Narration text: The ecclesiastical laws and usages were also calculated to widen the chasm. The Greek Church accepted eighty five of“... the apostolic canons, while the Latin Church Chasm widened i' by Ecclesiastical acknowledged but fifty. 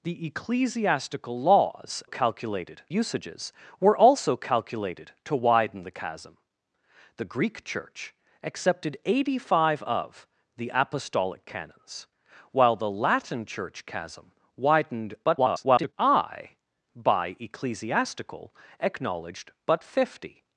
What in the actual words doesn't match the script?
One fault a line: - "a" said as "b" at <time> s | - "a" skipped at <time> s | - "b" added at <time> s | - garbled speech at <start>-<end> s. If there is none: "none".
- "and" said as "calculated" at 2.0 s
- garbled speech at 15.2-15.9 s